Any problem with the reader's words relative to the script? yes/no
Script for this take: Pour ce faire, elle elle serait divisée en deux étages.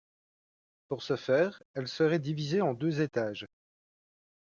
yes